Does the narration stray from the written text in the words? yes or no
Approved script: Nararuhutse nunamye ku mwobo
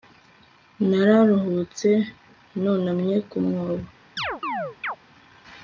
no